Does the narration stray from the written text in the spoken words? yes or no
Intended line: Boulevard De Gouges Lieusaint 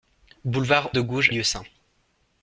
no